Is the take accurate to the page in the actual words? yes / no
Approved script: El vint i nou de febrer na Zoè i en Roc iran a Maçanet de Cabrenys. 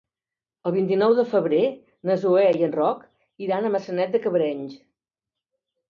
yes